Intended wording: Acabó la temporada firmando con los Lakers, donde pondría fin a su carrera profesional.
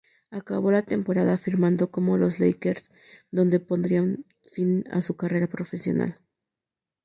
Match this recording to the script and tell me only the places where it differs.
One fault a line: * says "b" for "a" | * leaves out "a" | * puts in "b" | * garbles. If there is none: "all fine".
all fine